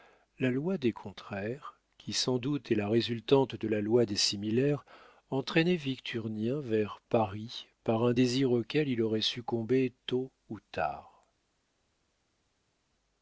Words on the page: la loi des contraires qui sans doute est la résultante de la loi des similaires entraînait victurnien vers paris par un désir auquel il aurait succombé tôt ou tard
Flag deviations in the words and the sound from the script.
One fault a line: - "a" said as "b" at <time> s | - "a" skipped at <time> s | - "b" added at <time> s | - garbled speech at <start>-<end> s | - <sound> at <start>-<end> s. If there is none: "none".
none